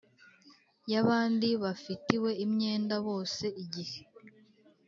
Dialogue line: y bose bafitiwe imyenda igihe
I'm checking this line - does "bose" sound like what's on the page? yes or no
no